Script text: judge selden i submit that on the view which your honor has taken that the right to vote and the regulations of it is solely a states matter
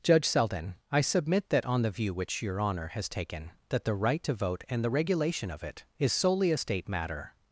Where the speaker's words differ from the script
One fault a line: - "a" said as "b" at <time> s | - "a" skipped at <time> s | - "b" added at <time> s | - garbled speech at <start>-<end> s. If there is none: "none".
- "regulations" said as "regulation" at 4.9 s
- "states" said as "state" at 6.6 s